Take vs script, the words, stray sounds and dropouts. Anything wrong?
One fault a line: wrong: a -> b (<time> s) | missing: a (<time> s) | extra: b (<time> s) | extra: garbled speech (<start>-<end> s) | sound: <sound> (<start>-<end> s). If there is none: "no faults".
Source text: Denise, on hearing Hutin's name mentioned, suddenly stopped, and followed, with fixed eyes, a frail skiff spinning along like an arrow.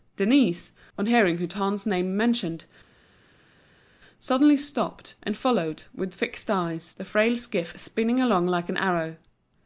wrong: a -> the (6.9 s)